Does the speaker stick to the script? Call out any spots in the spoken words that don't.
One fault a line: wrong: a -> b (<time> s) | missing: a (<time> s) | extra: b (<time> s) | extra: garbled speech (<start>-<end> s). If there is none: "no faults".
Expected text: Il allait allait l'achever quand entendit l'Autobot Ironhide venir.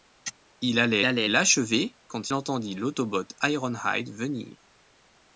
no faults